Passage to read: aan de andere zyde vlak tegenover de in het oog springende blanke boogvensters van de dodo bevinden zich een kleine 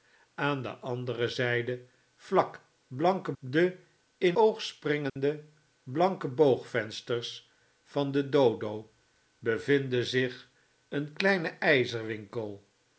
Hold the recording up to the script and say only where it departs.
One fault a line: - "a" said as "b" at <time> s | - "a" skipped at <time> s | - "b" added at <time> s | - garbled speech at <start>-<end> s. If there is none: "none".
- "tegenover" said as "blanke" at 2.9 s
- "het" skipped at 4.4 s